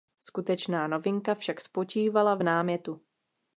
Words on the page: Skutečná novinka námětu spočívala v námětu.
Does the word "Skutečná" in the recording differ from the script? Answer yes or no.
no